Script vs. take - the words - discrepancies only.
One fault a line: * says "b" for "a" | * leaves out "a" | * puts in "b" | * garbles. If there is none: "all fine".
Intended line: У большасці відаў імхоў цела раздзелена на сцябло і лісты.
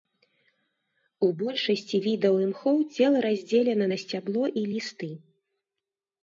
all fine